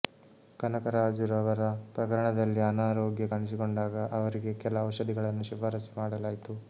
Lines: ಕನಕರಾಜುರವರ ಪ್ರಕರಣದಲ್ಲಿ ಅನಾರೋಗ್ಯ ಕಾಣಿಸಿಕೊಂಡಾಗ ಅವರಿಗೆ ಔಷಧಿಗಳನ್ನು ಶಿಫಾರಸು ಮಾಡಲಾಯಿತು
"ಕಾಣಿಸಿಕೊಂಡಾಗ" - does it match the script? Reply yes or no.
yes